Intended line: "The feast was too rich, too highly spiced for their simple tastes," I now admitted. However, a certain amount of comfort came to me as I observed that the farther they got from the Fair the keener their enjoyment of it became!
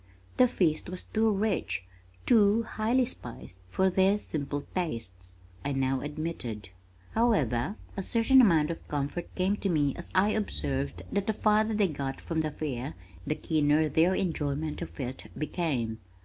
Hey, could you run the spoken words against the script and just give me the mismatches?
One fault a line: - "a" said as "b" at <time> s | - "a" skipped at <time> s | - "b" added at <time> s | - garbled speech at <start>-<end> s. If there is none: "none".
none